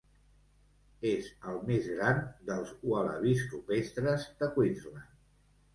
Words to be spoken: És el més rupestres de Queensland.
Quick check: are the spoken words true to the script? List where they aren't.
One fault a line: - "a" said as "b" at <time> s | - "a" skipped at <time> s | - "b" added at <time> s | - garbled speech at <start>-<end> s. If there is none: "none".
- "gran dels ualabis" added at 2.0 s